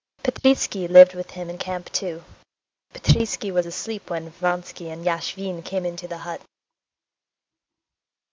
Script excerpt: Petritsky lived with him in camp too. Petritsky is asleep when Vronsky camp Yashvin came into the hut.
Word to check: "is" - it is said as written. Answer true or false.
false